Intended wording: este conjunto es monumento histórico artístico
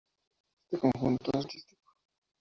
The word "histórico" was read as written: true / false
false